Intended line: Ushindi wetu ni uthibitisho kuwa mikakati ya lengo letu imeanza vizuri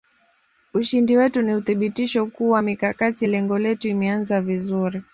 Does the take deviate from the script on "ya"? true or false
true